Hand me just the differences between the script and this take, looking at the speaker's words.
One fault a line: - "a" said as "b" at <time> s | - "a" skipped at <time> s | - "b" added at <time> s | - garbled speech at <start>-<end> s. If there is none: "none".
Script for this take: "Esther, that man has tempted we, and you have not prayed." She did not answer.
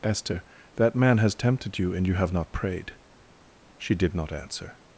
- "we" said as "you" at 1.8 s